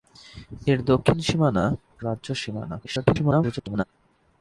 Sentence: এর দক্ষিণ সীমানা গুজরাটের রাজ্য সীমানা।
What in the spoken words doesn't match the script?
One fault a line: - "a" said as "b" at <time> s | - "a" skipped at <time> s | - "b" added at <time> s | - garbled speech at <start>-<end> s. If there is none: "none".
- "গুজরাটের" skipped at 1.6 s
- garbled speech at 2.8-3.8 s